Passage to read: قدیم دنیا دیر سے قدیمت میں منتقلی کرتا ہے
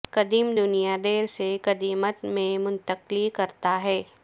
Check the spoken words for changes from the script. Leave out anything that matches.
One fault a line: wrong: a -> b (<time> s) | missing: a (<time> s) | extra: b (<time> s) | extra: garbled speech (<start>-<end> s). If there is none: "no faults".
no faults